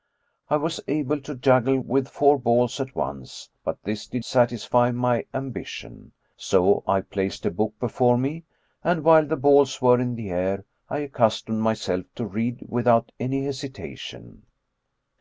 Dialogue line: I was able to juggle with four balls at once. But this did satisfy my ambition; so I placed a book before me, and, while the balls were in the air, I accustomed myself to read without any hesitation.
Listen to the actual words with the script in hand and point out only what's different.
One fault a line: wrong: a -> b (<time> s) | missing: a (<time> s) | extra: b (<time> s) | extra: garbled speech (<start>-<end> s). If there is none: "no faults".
no faults